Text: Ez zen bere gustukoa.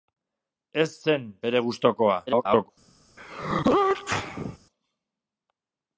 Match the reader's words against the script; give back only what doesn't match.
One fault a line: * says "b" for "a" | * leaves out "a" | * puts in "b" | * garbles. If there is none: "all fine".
* garbles